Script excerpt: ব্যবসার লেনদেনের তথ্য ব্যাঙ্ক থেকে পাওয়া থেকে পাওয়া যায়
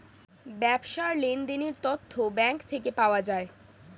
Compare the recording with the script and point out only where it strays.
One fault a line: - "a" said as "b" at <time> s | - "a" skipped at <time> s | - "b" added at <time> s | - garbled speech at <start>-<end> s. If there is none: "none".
- "থেকে পাওয়া" skipped at 3.2 s